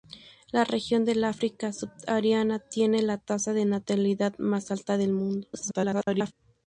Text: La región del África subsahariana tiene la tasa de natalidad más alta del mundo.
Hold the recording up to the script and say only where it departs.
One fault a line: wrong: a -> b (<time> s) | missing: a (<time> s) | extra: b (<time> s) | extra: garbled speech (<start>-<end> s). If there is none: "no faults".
extra: garbled speech (5.5-6.3 s)